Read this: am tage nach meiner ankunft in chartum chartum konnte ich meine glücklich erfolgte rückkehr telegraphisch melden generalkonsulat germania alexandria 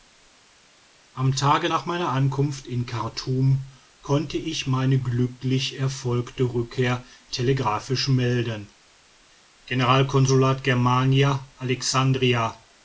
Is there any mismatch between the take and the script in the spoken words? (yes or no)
yes